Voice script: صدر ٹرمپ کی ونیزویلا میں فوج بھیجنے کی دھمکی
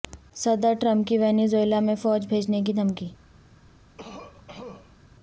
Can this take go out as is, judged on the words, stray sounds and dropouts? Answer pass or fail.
fail